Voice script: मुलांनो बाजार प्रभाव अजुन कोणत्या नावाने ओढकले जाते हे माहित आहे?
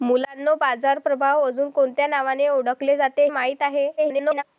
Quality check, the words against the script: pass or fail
fail